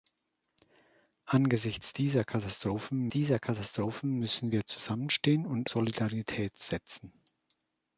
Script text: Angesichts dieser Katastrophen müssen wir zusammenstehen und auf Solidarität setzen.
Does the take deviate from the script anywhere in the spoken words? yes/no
yes